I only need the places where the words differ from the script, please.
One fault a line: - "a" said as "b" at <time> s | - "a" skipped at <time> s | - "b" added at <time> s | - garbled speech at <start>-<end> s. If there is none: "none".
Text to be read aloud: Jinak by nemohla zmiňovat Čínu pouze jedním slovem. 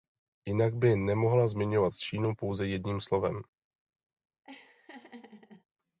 none